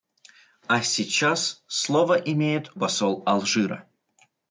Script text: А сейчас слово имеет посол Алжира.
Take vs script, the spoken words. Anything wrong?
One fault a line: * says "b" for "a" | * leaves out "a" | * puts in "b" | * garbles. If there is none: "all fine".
all fine